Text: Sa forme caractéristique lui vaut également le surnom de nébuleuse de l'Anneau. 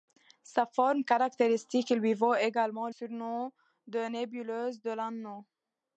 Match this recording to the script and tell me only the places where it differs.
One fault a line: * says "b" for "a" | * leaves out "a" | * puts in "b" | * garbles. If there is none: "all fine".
* leaves out "le"